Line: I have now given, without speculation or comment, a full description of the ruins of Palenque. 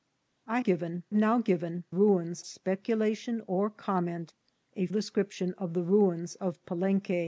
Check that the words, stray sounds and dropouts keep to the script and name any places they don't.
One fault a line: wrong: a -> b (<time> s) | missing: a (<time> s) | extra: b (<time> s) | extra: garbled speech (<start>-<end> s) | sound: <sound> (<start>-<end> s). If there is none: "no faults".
wrong: have -> given (0.6 s)
wrong: without -> ruins (1.9 s)
missing: full (4.9 s)